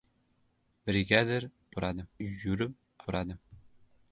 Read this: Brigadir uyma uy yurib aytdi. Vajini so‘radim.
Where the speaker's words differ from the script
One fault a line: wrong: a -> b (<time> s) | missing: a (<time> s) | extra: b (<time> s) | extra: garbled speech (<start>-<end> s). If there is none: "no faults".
wrong: uyma -> so‘radim (1.7 s)
missing: aytdi Vajini (2.8 s)